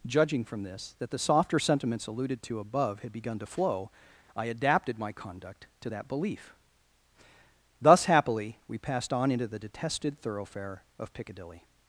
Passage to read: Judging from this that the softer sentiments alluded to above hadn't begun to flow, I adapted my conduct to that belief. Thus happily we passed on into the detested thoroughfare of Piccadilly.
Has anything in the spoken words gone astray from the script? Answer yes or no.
yes